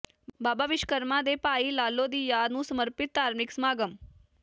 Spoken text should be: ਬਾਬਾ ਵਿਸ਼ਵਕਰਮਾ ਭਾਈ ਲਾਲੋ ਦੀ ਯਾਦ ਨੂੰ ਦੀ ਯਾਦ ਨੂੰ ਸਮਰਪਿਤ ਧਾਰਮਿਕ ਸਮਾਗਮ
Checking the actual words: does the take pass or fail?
fail